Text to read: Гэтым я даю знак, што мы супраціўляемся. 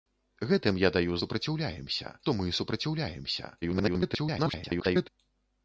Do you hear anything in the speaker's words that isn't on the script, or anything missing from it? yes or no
yes